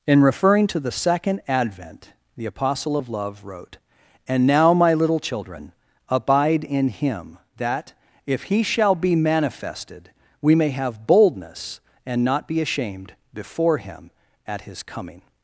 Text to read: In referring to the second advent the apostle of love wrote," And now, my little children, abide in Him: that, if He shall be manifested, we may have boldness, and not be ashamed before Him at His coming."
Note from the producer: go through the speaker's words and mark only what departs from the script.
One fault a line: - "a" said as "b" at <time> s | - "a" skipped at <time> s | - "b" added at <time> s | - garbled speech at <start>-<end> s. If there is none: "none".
none